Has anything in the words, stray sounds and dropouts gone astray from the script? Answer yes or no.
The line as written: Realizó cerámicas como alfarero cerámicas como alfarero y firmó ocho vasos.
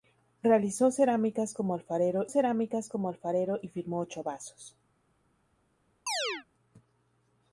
yes